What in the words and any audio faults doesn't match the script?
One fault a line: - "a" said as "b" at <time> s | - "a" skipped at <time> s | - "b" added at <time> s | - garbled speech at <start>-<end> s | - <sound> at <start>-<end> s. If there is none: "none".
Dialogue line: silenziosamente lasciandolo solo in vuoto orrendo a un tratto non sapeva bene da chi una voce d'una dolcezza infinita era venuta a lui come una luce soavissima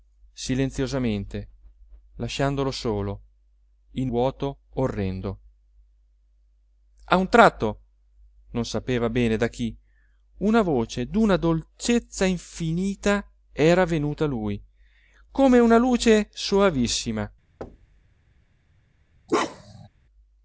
- thud at 17.6-18.0 s
- bark at 19.3-19.9 s